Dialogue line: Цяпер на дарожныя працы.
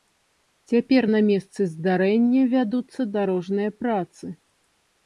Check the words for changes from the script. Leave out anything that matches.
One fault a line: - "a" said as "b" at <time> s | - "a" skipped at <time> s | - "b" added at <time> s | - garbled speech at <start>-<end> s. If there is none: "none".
- "месцы здарэння вядуцца" added at 1.3 s